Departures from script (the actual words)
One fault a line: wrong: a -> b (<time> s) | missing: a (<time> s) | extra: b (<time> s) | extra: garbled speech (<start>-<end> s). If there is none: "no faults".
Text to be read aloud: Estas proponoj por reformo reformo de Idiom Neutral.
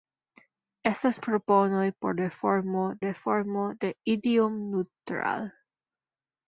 no faults